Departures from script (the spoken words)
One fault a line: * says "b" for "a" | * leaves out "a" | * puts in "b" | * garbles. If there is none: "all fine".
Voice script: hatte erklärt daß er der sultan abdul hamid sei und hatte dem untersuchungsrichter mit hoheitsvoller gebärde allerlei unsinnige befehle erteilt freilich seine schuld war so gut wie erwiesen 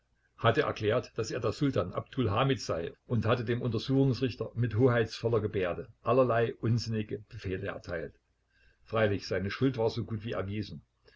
all fine